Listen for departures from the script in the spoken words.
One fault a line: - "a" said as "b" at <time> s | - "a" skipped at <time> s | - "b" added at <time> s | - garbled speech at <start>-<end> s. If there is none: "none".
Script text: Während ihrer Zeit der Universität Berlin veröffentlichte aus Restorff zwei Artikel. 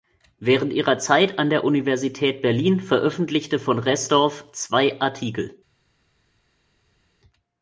- "an" added at 1.4 s
- "aus" said as "von" at 3.6 s